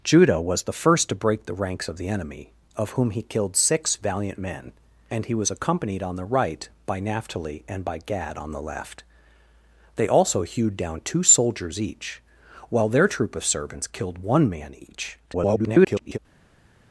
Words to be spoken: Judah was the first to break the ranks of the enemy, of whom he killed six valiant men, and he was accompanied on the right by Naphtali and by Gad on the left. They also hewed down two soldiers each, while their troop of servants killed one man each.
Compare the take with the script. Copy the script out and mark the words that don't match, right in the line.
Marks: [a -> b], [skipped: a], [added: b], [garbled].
Judah was the first to break the ranks of the enemy, of whom he killed six valiant men, and he was accompanied on the right by Naphtali and by Gad on the left. They also hewed down two soldiers each, while their troop of servants killed one man each. [garbled]